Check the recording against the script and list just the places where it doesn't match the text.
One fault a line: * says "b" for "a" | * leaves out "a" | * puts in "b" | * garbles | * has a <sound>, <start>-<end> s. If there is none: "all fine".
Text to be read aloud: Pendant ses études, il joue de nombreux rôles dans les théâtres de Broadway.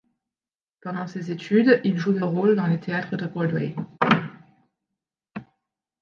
* leaves out "nombreux"